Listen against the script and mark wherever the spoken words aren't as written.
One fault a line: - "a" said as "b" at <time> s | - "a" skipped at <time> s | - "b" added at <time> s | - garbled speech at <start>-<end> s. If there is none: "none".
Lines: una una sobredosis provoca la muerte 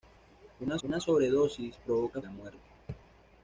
none